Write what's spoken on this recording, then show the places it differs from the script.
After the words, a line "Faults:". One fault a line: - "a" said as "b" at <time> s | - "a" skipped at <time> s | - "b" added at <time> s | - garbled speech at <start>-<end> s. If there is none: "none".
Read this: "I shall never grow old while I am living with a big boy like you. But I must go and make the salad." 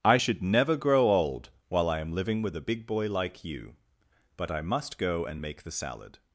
"I should never grow old while I am living with a big boy like you. But I must go and make the salad."
Faults:
- "shall" said as "should" at 0.1 s